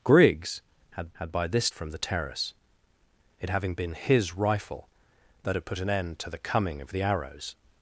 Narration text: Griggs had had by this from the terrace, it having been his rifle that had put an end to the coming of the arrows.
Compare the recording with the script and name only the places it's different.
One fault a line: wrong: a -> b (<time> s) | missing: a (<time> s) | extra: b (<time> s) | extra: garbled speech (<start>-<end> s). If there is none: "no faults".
no faults